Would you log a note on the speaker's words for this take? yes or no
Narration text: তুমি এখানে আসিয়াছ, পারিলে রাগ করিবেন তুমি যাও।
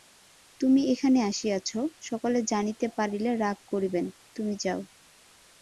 yes